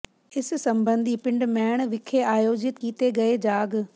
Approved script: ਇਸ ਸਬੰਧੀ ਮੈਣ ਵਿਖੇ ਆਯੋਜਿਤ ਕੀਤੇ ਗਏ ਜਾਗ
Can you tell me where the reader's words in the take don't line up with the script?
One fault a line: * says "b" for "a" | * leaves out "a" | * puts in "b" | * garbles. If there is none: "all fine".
* puts in "ਪਿੰਡ"